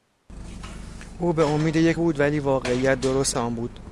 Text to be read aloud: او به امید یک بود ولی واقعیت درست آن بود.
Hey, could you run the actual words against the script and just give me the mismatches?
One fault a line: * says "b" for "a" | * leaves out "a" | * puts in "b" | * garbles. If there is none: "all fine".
all fine